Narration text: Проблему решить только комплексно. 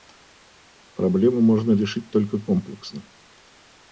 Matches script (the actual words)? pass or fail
fail